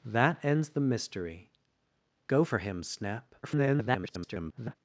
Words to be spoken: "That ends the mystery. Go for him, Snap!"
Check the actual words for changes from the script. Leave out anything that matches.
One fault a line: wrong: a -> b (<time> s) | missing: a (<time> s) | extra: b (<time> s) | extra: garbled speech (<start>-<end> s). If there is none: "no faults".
extra: garbled speech (3.4-4.8 s)